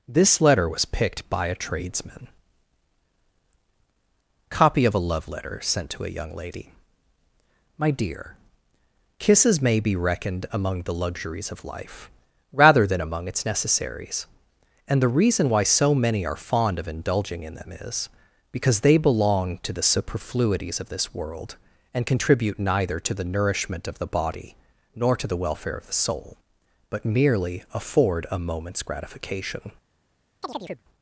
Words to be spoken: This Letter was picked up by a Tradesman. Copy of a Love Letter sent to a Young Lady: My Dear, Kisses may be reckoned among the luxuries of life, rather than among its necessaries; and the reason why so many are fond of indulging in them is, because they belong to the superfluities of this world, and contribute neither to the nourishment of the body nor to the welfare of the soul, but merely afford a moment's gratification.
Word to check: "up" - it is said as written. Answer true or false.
false